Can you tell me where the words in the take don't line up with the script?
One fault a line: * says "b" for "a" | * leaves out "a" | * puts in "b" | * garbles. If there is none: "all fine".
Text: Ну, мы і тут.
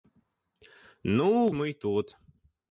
all fine